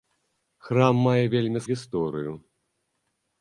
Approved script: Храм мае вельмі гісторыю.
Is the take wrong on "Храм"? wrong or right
right